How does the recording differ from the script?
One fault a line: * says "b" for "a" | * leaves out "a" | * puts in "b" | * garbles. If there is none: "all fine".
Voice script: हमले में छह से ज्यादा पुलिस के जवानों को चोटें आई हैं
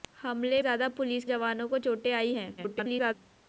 * leaves out "में छह से"
* leaves out "के"
* garbles